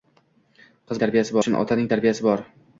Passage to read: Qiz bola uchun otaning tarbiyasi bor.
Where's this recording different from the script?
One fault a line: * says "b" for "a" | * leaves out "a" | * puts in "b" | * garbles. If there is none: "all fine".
* says "tarbiyasi" for "bola"